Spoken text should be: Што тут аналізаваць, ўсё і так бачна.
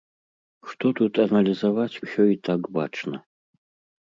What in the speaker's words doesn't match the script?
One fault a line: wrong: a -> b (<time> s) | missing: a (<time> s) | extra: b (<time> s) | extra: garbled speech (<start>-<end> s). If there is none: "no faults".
no faults